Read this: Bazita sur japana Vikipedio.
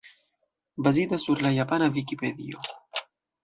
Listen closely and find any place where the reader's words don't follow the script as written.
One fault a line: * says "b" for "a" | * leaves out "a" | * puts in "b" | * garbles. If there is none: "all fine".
* puts in "la"